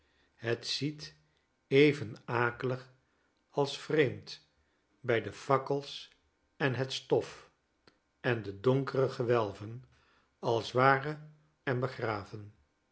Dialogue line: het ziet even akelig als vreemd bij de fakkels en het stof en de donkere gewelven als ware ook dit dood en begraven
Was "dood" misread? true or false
true